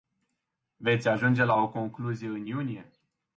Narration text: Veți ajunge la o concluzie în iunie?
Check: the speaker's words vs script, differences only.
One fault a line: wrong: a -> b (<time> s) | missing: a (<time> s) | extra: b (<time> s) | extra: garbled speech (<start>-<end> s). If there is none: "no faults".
no faults